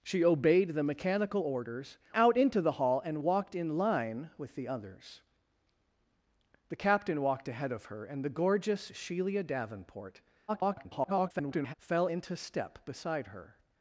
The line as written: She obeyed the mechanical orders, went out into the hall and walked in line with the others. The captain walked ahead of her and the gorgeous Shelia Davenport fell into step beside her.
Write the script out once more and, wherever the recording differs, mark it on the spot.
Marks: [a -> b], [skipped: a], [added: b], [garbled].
She obeyed the mechanical orders, [skipped: went] out into the hall and walked in line with the others. The captain walked ahead of her and the gorgeous Shelia Davenport [garbled] fell into step beside her.